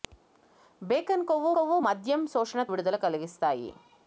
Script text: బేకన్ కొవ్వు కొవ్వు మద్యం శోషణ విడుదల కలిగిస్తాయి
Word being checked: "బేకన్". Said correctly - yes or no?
yes